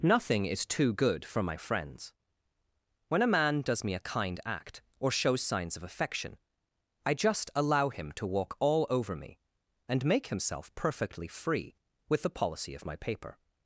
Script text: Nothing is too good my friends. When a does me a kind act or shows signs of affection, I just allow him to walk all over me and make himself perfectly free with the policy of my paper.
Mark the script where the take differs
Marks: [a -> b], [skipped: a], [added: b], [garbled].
Nothing is too good [added: for] my friends. When a [added: man] does me a kind act or shows signs of affection, I just allow him to walk all over me and make himself perfectly free with the policy of my paper.